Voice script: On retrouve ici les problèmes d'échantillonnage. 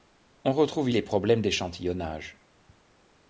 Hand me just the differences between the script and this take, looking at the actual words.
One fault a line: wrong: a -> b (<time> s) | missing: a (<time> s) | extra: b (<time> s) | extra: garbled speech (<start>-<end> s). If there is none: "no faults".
missing: ici (0.9 s)